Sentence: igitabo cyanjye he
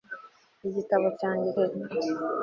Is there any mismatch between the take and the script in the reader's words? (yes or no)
no